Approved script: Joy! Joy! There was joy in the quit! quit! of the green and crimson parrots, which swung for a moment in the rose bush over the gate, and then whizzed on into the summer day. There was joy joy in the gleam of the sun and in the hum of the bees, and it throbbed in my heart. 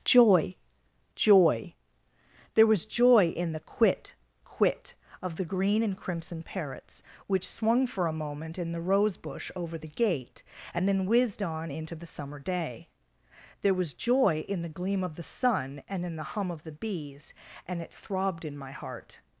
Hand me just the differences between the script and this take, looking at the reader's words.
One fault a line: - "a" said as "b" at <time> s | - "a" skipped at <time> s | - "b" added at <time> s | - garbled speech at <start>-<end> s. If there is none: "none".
- "joy" skipped at 14.4 s